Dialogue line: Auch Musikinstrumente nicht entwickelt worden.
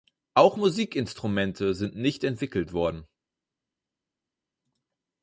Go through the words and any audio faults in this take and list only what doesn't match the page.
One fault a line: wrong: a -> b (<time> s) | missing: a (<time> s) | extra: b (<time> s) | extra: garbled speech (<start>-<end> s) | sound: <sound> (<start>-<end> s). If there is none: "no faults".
extra: sind (1.7 s)